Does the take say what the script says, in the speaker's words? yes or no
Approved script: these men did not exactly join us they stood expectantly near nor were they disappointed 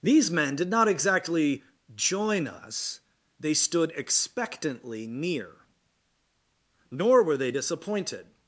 yes